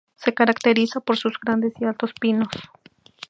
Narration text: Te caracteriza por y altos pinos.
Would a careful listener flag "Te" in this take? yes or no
yes